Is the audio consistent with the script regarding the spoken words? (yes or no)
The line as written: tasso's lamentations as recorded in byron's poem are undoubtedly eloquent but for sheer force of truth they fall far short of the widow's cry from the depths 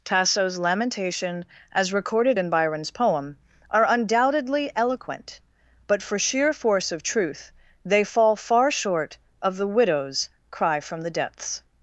no